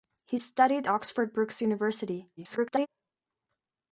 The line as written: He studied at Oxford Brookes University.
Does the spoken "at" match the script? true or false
false